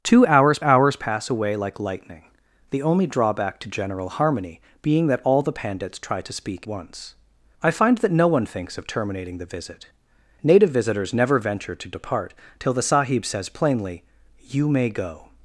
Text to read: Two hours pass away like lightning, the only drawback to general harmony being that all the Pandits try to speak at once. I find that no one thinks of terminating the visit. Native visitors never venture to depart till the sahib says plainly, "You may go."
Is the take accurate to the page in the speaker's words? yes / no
no